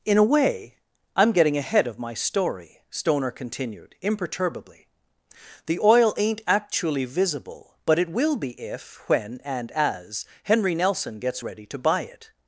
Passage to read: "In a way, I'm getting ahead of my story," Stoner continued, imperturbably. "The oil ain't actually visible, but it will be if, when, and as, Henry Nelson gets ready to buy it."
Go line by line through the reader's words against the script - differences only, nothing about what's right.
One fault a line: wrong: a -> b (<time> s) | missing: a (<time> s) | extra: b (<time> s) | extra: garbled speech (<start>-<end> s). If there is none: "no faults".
no faults